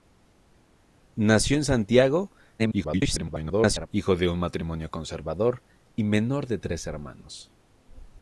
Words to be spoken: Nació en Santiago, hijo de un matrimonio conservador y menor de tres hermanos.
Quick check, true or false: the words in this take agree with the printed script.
false